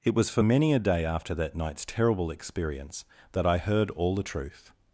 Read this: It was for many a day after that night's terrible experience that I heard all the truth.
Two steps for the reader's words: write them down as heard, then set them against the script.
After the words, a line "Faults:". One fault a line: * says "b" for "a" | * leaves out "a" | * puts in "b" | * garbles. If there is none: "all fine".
It was for many a day after that night's terrible experience that I heard all the truth.
Faults:
all fine